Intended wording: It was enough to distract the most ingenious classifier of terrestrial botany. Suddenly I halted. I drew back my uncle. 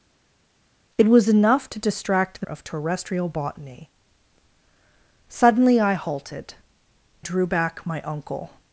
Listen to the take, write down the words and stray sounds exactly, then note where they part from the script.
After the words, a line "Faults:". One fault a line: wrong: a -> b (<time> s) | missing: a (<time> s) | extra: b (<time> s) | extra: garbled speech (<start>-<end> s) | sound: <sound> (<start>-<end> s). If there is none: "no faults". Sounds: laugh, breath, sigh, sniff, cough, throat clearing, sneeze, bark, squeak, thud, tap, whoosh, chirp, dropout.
It was enough to distract the of terrestrial botany. Suddenly I halted. drew back my uncle.
Faults:
missing: most ingenious classifier (2.5 s)
missing: I (6.5 s)